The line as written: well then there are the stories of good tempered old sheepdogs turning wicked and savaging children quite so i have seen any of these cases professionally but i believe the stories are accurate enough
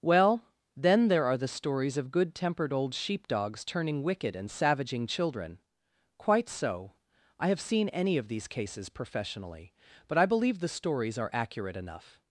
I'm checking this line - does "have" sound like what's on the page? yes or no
yes